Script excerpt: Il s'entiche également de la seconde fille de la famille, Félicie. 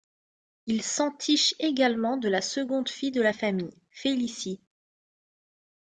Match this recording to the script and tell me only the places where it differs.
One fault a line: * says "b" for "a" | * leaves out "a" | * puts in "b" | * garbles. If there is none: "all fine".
all fine